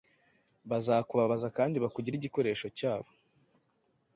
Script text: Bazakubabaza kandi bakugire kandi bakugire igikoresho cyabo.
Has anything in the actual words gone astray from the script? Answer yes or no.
yes